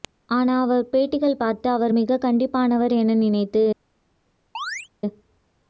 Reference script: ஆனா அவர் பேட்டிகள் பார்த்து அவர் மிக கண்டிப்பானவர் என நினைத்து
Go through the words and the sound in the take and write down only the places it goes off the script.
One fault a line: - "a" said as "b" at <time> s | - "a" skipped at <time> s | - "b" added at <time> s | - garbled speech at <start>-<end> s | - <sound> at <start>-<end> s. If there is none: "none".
- chirp at 4.5-4.9 s